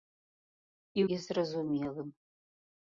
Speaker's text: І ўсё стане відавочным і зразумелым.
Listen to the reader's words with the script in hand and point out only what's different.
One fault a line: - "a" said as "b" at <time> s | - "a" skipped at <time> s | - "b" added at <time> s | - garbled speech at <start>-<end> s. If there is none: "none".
- "ўсё стане відавочным" skipped at 1.0 s